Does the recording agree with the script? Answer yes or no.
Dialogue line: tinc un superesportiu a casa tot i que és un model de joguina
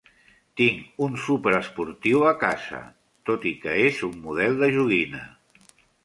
yes